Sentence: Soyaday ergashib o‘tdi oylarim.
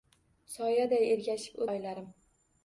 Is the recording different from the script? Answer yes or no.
yes